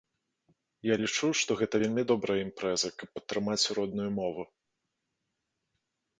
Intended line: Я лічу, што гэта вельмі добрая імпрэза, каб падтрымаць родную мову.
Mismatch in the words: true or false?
false